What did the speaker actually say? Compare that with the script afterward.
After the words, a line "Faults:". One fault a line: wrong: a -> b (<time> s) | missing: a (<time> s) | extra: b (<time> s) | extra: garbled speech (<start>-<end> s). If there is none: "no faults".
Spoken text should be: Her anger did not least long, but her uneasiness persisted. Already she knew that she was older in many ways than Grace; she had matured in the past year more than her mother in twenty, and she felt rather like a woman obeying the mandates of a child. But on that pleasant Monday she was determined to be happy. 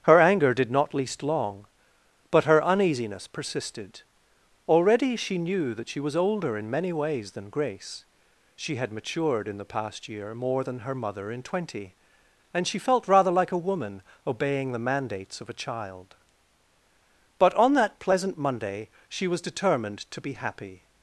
Her anger did not least long, but her uneasiness persisted. Already she knew that she was older in many ways than Grace; she had matured in the past year more than her mother in twenty, and she felt rather like a woman obeying the mandates of a child. But on that pleasant Monday she was determined to be happy.
Faults:
no faults